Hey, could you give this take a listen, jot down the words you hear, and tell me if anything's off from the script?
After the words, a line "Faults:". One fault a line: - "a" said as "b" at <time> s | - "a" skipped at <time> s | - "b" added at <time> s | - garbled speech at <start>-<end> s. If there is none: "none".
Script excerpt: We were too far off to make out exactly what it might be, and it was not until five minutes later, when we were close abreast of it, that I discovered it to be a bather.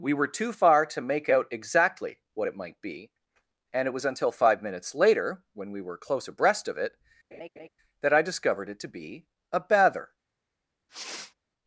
We were too far to make out exactly what it might be, and it was until five minutes later, when we were close abreast of it, that I discovered it to be a bather.
Faults:
- "off" skipped at 0.8 s
- "not" skipped at 4.1 s